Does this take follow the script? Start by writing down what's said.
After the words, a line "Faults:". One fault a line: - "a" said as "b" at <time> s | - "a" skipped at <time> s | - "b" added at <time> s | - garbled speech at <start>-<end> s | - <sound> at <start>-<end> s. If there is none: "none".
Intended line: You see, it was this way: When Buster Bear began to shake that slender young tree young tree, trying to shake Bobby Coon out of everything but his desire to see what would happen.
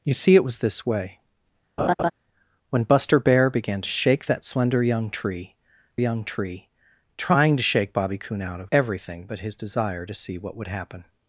You see, it was this way: When Buster Bear began to shake that slender young tree young tree, trying to shake Bobby Coon out of everything but his desire to see what would happen.
Faults:
- laugh at 1.8-2.1 s